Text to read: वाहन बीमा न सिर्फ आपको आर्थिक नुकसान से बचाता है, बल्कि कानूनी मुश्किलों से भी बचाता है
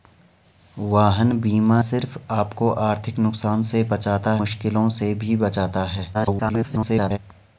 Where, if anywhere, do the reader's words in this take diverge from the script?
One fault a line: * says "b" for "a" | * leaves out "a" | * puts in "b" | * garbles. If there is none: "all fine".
* leaves out "न"
* leaves out "है बल्कि कानूनी"
* garbles